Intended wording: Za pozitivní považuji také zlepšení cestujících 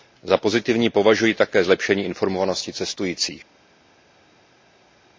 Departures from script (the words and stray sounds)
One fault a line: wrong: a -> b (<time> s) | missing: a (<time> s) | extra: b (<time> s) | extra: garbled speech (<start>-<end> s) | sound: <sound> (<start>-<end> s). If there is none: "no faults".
extra: informovanosti (2.0 s)